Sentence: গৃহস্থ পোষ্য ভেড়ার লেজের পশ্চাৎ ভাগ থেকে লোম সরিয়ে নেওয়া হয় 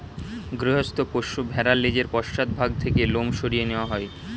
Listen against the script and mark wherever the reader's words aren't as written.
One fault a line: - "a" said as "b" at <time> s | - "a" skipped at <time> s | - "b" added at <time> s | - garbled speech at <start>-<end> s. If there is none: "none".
none